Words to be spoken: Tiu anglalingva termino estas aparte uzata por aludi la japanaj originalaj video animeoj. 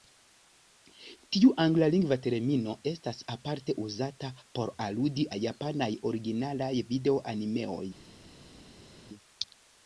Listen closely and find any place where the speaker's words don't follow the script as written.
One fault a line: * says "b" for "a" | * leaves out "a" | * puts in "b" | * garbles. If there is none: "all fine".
all fine